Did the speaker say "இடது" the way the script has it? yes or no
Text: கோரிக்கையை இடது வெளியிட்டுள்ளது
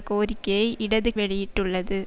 yes